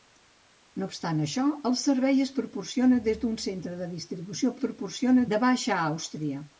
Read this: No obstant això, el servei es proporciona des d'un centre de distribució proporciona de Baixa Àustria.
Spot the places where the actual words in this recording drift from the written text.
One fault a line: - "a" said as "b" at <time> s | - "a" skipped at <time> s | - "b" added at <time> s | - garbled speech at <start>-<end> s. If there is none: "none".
none